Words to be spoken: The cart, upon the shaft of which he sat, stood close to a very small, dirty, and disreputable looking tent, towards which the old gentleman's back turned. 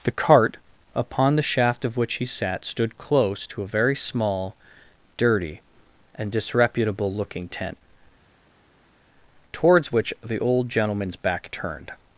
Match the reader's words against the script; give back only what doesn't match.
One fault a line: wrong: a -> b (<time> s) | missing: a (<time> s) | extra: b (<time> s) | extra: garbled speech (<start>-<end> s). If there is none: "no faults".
no faults